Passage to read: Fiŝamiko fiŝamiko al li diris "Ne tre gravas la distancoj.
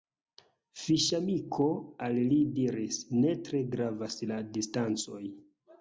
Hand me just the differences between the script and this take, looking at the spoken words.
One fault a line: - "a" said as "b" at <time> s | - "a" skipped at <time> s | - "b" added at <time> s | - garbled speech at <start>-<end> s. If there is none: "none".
- "fiŝamiko" skipped at 1.7 s